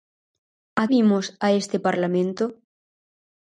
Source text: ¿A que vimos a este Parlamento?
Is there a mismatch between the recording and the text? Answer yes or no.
yes